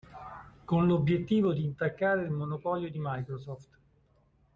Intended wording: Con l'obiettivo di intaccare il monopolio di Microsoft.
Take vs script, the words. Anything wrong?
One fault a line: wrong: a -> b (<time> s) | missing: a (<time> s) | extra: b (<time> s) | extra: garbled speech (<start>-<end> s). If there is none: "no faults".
no faults